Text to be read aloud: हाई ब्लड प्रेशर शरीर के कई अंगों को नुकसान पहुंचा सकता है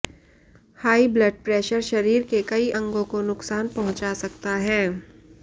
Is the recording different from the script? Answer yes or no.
no